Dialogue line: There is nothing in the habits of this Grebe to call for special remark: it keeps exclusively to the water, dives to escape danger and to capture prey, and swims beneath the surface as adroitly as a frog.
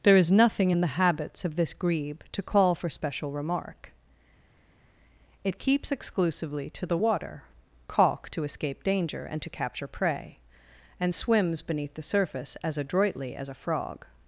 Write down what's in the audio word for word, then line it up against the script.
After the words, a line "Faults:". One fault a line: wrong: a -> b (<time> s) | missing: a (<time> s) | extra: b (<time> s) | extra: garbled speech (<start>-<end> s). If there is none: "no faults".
There is nothing in the habits of this Grebe to call for special remark: it keeps exclusively to the water, caulk to escape danger and to capture prey, and swims beneath the surface as adroitly as a frog.
Faults:
wrong: dives -> caulk (7.9 s)